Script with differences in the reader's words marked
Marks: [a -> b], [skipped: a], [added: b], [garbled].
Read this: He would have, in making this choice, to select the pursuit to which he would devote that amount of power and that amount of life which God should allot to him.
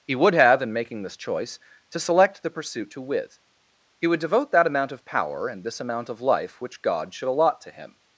He would have, in making this choice, to select the pursuit to [which -> with] he would devote that amount of power and [that -> this] amount of life which God should allot to him.